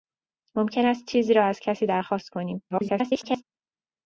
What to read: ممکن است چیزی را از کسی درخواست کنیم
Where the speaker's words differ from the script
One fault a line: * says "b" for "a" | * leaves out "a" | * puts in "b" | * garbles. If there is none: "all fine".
* garbles